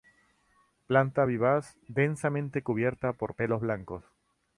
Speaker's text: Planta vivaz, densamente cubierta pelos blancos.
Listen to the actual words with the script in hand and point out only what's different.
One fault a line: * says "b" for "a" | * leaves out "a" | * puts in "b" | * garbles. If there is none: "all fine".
* puts in "por"